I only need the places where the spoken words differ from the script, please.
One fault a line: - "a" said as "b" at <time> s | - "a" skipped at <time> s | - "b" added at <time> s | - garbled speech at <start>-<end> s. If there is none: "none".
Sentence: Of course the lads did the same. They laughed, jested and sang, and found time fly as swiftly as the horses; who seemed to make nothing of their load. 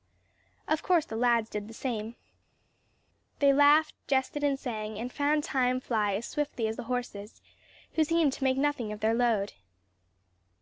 none